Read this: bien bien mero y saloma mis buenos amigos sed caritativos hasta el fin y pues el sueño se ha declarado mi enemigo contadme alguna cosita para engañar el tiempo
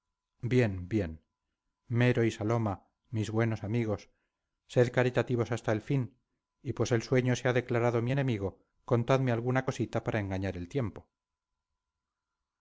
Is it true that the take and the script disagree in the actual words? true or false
false